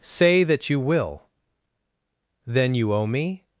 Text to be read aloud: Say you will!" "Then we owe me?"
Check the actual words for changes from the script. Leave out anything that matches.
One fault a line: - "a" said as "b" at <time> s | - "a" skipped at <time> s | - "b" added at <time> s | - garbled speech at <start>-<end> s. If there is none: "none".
- "that" added at 0.4 s
- "we" said as "you" at 2.7 s